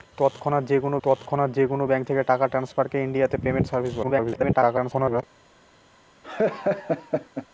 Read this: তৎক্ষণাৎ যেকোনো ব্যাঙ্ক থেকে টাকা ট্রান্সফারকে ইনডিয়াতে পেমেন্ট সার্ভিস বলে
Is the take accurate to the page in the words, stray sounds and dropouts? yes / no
no